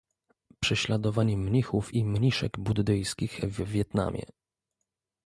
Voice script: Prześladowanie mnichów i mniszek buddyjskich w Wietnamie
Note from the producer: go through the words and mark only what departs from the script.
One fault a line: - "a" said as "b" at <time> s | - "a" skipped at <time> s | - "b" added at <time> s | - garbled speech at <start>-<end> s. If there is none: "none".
none